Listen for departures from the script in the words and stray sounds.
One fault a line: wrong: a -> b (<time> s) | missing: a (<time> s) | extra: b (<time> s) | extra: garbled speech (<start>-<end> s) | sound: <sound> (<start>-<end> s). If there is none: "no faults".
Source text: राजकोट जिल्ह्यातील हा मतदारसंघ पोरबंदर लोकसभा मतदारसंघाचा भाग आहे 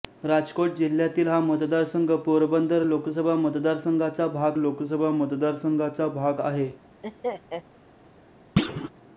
extra: लोकसभा मतदारसंघाचा भाग (4.6 s)
sound: laugh (7.0-7.6 s)
sound: thud (8.6-8.9 s)